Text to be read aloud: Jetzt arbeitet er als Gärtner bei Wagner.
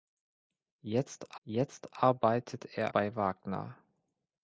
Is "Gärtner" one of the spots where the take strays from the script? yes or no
yes